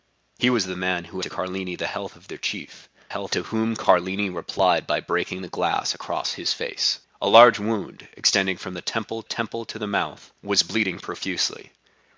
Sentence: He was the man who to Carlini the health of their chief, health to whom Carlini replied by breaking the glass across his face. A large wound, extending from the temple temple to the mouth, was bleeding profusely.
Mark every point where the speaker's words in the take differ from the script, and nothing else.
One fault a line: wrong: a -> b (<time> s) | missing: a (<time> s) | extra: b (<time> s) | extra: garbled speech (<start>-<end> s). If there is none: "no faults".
no faults